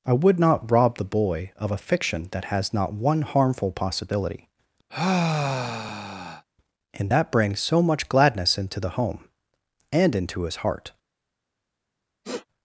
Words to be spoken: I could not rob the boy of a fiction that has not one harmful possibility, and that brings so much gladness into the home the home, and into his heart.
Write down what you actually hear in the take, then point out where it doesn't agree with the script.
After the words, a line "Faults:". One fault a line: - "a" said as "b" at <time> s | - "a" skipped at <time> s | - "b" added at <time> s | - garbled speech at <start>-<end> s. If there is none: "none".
I would not rob the boy of a fiction that has not one harmful possibility, and that brings so much gladness into the home, and into his heart.
Faults:
- "could" said as "would" at 0.1 s
- "the home" skipped at 9.2 s